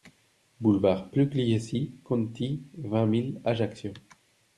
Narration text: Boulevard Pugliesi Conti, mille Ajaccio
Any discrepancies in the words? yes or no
yes